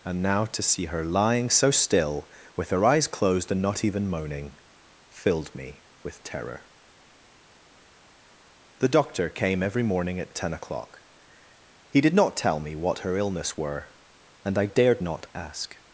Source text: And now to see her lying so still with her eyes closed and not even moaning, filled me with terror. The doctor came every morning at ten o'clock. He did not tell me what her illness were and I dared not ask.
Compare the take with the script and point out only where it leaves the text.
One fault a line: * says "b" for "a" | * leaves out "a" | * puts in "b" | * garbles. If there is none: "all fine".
all fine